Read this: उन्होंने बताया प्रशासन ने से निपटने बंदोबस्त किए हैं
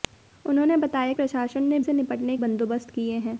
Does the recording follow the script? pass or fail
pass